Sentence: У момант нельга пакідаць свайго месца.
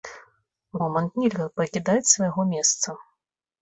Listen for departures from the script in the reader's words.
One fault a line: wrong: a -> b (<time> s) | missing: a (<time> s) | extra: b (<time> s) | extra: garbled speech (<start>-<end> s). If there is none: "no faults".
no faults